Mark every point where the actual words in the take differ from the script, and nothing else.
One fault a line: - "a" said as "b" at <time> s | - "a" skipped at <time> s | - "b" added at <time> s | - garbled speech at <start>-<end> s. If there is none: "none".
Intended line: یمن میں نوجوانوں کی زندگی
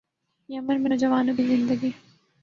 none